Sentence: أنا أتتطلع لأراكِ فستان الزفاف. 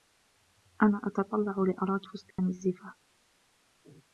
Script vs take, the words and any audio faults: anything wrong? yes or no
yes